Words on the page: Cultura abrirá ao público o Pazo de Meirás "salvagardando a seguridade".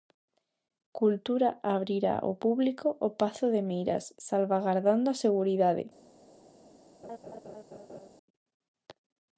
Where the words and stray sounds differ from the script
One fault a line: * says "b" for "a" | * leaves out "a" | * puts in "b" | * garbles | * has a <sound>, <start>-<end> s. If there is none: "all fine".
* has a laugh, 7.0-8.1 s